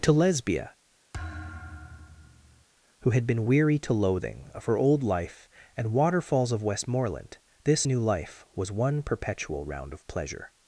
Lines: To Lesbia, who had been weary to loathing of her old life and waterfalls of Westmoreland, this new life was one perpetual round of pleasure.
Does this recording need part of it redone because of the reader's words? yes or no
no